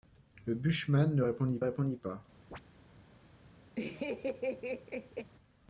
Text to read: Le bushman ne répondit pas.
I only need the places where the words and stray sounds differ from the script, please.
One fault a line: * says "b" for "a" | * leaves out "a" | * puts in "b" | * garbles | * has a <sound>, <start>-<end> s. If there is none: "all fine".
* puts in "répondit"
* has a chirp, 2.5-2.6 s
* has a laugh, 3.8-5.3 s